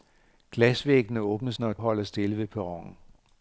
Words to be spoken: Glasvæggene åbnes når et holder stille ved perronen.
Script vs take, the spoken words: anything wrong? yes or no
no